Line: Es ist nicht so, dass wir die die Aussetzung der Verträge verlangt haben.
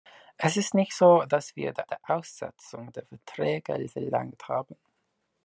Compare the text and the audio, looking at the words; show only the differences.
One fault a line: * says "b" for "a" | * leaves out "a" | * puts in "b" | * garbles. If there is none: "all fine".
all fine